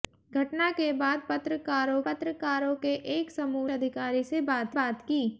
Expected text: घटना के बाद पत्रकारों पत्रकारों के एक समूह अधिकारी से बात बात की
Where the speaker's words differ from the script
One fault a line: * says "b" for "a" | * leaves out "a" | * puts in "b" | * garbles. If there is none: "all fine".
all fine